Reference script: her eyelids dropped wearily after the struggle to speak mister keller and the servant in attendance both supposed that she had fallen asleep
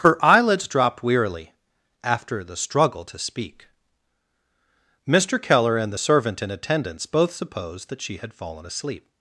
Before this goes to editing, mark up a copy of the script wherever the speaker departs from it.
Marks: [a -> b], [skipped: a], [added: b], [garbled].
her eyelids dropped wearily after the struggle to speak mister keller and the servant in attendance both supposed that she had fallen asleep